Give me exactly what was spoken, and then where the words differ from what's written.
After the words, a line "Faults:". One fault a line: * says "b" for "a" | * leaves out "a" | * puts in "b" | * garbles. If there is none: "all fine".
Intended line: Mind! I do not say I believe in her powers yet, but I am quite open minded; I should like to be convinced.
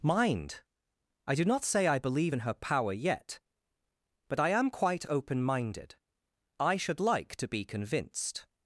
Mind! I do not say I believe in her power yet, but I am quite open minded; I should like to be convinced.
Faults:
* says "power" for "powers"